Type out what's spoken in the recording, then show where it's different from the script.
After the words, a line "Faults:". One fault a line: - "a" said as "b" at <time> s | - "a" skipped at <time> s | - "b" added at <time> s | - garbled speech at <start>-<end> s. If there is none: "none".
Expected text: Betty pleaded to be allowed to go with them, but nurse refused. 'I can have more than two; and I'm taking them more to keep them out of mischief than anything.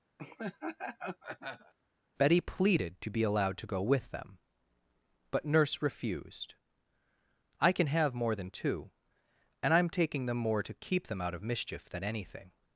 Betty pleaded to be allowed to go with them, but nurse refused. 'I can have more than two; and I'm taking them more to keep them out of mischief than anything.
Faults:
none